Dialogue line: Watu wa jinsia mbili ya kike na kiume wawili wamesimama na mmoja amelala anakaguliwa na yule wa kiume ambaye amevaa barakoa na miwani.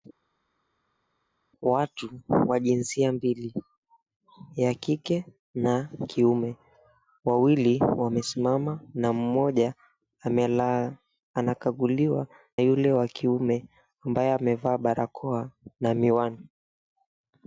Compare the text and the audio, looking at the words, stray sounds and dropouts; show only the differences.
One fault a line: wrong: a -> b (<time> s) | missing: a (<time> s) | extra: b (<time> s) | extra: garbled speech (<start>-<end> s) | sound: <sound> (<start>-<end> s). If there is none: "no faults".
missing: na (12.3 s)